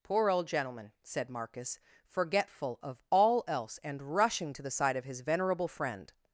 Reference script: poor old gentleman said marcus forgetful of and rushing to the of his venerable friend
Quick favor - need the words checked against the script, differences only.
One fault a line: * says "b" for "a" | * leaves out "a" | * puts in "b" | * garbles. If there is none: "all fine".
* puts in "all else"
* puts in "side"